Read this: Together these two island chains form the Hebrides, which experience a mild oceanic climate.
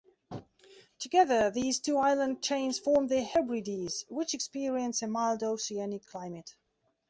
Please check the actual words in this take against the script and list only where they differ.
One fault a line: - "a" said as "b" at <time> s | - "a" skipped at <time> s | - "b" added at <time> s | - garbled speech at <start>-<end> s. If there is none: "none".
none